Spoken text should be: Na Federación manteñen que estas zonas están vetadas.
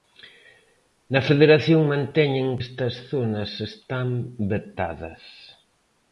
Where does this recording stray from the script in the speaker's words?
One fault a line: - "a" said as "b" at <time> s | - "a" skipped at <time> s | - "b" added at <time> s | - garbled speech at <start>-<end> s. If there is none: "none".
- "que" skipped at 2.5 s